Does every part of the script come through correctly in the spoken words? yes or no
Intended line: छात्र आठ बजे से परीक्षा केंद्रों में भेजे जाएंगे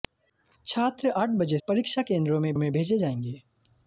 no